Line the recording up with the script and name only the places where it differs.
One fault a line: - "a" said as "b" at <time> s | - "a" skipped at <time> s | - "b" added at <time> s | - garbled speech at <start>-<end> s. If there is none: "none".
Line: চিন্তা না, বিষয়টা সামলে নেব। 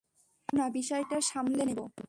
none